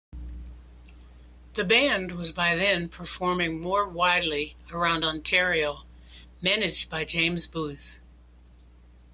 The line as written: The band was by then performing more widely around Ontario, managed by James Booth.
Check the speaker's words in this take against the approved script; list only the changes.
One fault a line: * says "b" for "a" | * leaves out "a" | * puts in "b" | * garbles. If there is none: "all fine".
all fine